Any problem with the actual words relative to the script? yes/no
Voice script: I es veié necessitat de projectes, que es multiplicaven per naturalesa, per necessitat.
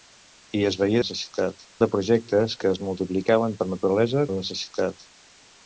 no